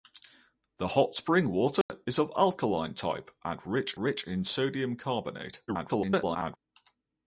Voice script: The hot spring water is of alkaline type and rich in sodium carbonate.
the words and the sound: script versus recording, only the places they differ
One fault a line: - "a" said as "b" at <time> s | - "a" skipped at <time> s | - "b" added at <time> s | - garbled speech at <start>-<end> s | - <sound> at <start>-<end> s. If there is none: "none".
- dropout at 1.8-1.9 s
- "rich" added at 4.0 s
- garbled speech at 5.7-6.6 s